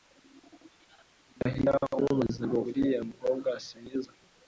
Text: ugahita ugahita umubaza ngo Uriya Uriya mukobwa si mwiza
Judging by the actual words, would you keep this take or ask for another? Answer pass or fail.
fail